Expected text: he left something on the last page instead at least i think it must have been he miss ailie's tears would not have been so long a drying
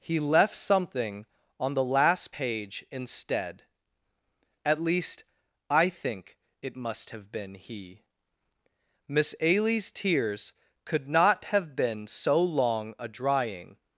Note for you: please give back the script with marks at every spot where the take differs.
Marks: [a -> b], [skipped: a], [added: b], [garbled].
he left something on the last page instead at least i think it must have been he miss ailie's tears [would -> could] not have been so long a drying